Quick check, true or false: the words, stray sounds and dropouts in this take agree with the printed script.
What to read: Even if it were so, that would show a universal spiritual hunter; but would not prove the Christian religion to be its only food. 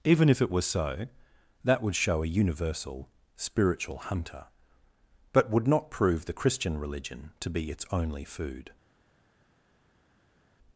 true